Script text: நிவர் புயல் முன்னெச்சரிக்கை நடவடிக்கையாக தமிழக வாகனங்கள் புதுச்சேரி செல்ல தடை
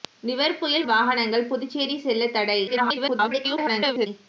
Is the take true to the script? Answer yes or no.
no